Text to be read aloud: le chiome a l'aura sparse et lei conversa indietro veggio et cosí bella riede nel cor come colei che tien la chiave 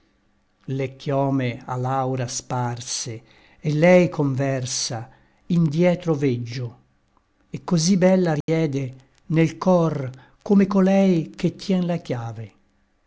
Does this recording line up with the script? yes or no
yes